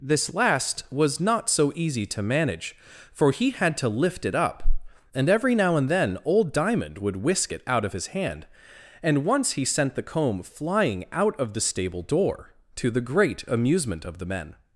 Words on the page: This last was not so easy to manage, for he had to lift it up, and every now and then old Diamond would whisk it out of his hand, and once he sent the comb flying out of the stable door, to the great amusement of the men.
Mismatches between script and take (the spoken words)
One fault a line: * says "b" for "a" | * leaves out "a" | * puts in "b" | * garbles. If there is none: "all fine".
all fine